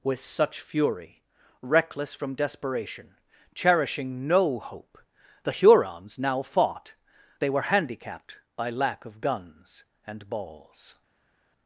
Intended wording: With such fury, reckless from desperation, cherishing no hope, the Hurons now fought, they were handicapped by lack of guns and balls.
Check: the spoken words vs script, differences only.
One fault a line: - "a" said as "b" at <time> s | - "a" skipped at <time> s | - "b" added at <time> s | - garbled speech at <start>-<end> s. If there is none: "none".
none